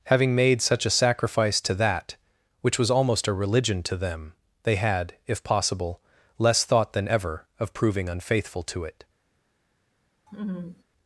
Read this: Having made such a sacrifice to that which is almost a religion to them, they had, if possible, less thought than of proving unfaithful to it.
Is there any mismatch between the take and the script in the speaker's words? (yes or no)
yes